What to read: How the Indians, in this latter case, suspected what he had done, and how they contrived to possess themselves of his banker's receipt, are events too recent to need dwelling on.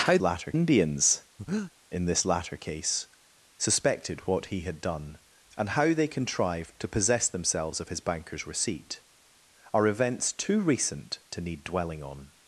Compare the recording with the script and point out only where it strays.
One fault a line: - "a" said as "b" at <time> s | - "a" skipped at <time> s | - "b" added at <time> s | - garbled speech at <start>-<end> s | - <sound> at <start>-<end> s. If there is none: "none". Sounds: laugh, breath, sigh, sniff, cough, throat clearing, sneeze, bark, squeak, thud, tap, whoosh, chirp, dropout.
- "the" said as "latter" at 0.2 s
- breath at 1.4-1.7 s